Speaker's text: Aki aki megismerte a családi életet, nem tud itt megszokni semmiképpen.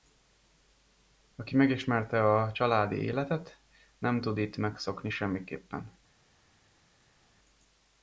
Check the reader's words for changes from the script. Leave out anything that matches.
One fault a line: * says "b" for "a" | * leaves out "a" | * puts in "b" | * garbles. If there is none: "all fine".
* leaves out "aki"